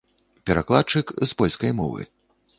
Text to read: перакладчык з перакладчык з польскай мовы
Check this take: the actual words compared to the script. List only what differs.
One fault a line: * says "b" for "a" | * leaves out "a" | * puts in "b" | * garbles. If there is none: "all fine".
* leaves out "перакладчык з"